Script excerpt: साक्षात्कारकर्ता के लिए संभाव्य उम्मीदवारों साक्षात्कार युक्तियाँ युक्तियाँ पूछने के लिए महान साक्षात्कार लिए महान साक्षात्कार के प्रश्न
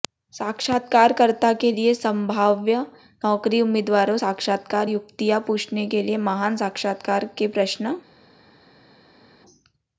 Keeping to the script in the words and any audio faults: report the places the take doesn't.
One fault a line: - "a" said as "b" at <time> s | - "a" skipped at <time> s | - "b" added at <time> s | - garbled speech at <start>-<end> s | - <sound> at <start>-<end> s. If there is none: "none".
- "नौकरी" added at 3.2 s
- "युक्तियाँ" skipped at 5.4 s
- "लिए महान साक्षात्कार" skipped at 7.3 s